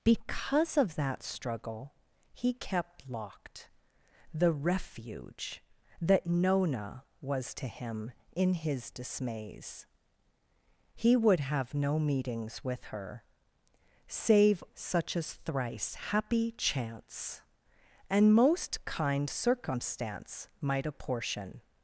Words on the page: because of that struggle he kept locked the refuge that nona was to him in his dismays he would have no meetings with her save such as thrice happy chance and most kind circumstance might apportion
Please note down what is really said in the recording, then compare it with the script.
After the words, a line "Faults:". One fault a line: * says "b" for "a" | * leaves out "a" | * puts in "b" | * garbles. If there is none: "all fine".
because of that struggle he kept locked the refuge that nona was to him in his dismays he would have no meetings with her save such as thrice happy chance and most kind circumstance might apportion
Faults:
all fine